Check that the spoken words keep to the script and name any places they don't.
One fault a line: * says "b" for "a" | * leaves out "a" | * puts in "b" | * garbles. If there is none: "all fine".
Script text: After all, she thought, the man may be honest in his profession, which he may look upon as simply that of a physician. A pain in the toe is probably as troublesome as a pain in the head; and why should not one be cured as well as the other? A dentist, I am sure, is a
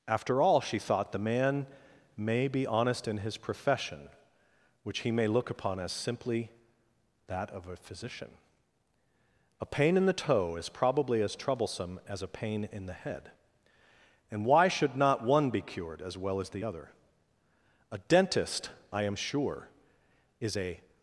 all fine